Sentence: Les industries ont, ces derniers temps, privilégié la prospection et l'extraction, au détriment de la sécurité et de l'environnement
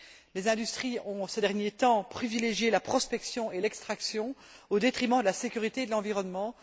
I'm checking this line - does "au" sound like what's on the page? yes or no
yes